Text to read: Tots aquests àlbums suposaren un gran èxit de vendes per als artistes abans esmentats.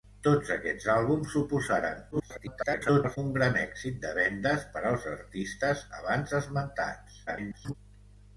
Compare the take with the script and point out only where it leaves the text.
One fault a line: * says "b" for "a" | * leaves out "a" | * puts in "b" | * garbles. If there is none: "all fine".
* garbles
* garbles